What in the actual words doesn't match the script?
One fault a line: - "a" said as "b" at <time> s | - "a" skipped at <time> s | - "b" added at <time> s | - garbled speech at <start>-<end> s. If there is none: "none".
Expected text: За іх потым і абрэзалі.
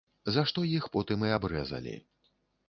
- "што" added at 0.5 s